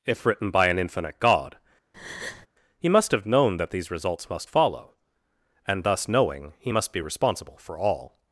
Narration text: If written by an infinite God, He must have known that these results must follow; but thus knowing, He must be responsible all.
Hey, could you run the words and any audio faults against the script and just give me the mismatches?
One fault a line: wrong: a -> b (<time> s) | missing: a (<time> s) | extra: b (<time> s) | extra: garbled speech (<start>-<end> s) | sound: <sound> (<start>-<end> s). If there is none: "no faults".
sound: breath (1.9-2.5 s)
wrong: but -> and (5.7 s)
extra: for (7.6 s)